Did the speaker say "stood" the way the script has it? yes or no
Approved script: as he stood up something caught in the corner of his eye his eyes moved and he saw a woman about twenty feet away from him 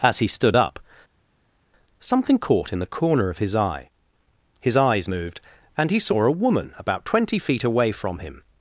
yes